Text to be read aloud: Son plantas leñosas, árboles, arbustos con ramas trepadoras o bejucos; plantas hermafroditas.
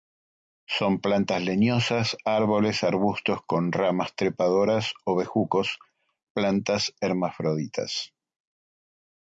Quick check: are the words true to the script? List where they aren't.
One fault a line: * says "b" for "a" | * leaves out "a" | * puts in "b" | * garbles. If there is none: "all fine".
all fine